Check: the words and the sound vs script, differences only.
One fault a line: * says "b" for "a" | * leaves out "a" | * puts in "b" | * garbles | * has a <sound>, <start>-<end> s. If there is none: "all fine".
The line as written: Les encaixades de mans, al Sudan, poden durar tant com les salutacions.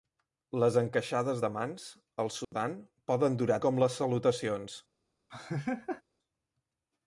* has a dropout, 2.4-2.5 s
* leaves out "tant"
* has a laugh, 5.3-6.0 s